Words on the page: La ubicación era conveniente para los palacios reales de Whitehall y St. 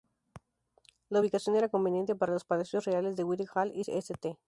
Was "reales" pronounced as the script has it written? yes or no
yes